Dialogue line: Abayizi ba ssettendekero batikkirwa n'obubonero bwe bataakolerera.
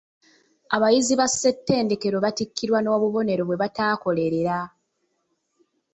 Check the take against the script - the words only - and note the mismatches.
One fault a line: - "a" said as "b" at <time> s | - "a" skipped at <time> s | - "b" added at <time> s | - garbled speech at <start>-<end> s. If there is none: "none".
none